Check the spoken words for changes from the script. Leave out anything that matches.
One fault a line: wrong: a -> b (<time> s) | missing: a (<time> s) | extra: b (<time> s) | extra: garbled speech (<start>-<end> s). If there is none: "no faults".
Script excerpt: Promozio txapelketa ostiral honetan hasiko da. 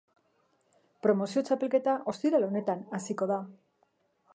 no faults